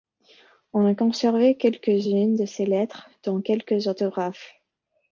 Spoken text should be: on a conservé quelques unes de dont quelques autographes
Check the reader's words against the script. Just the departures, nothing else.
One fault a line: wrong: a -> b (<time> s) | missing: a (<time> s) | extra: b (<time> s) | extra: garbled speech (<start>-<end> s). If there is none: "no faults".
extra: ses lettres (2.4 s)